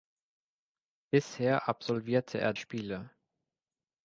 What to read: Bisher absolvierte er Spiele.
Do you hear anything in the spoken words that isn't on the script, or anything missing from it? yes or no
no